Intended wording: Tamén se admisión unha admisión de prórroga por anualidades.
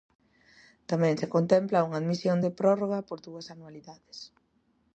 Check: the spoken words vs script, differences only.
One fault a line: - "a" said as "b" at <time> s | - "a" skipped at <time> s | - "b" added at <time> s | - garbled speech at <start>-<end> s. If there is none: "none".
- "admisión" said as "contempla" at 1.4 s
- "dúas" added at 3.3 s